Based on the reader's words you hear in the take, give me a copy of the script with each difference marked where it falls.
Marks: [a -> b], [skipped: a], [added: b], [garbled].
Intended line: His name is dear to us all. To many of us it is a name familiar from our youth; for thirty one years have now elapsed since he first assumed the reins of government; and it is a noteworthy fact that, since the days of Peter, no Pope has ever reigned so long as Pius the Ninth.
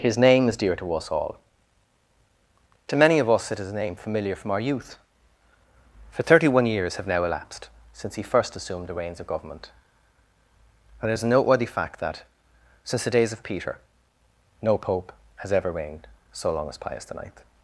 His name is dear to us all. To many of us it is a name familiar from our youth; for thirty one years have now elapsed since he first assumed the reins of government; and it is a noteworthy fact that, since the days of Peter, no Pope has ever reigned so long as Pius the Ninth.